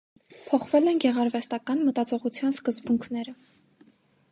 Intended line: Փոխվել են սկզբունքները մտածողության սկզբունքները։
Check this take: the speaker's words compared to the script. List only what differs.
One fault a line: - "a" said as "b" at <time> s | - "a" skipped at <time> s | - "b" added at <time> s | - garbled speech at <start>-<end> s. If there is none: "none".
- "սկզբունքները" said as "գեղարվեստական" at 1.0 s